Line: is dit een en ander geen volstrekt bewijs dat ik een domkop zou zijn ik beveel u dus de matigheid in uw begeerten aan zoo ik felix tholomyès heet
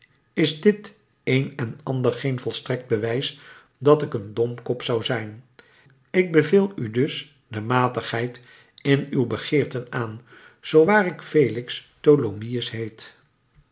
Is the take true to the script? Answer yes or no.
no